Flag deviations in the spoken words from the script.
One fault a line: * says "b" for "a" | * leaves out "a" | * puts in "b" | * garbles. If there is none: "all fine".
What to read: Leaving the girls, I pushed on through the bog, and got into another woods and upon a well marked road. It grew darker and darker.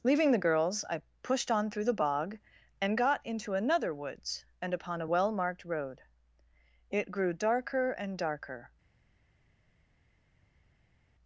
all fine